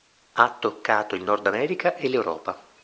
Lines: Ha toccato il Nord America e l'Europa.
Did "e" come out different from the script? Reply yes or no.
no